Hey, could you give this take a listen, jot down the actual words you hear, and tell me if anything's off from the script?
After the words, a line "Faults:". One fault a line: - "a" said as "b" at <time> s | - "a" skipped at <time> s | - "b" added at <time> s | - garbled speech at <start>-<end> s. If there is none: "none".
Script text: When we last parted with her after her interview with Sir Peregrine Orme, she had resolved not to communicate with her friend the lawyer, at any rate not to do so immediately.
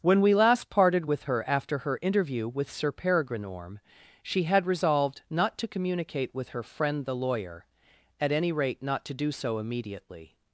When we last parted with her after her interview with Sir Peregrine Orme, she had resolved not to communicate with her friend the lawyer, at any rate not to do so immediately.
Faults:
none